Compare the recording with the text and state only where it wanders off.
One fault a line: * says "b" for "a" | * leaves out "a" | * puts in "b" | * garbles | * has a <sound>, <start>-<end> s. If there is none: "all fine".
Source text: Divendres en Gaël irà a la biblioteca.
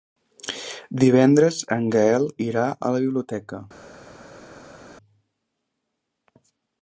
all fine